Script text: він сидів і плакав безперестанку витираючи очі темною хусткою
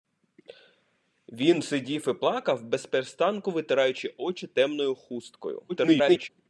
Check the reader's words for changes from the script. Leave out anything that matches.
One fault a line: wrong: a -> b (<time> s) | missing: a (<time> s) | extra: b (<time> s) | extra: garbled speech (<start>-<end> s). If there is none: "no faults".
extra: garbled speech (5.7-6.3 s)